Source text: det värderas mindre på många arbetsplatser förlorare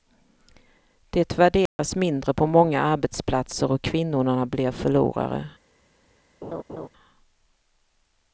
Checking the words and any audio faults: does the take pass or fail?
fail